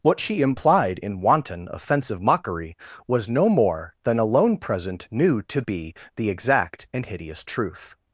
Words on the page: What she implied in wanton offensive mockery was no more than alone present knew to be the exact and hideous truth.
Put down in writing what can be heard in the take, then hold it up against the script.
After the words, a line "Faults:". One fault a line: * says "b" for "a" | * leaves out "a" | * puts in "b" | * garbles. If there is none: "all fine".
What she implied in wanton offensive mockery was no more than alone present knew to be the exact and hideous truth.
Faults:
all fine